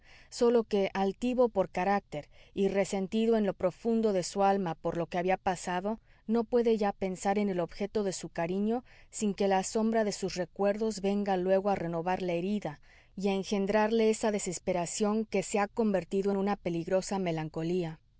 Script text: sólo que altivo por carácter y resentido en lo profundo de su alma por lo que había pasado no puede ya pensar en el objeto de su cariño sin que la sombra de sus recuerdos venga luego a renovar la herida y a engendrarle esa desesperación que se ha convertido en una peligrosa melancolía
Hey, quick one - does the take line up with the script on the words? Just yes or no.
yes